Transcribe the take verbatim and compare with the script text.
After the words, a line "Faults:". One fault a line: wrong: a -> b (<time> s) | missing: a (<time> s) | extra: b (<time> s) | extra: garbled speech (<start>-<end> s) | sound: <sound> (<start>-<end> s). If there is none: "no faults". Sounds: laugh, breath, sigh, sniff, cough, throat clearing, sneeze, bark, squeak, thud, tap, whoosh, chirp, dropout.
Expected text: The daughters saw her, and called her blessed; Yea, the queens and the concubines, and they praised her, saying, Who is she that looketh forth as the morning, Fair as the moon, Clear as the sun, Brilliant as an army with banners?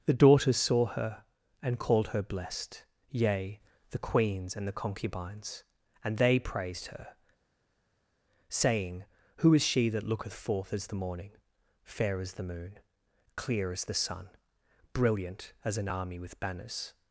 The daughters saw her, and called her blessed; Yea, the queens and the concubines, and they praised her, saying, Who is she that looketh forth as the morning, Fair as the moon, Clear as the sun, Brilliant as an army with banners?
Faults:
no faults